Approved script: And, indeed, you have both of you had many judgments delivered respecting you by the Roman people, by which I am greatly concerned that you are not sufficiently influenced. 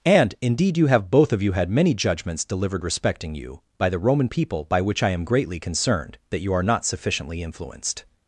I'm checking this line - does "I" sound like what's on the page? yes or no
yes